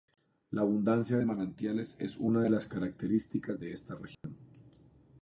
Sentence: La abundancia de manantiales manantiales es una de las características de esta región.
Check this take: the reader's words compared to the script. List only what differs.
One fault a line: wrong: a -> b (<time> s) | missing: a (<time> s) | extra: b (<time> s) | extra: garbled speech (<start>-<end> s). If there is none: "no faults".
missing: manantiales (2.0 s)